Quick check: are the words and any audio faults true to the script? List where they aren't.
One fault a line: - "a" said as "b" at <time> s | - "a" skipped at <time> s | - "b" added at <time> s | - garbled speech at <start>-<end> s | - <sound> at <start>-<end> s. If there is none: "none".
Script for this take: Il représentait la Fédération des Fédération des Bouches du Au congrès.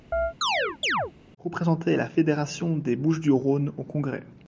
- chirp at 0.1-1.1 s
- "Fédération des" skipped at 2.9 s
- "Rhône" added at 3.3 s